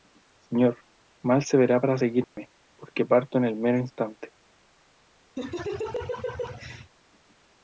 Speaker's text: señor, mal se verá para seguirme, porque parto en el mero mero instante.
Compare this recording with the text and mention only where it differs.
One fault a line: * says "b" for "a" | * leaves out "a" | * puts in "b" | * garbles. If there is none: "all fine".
* leaves out "mero"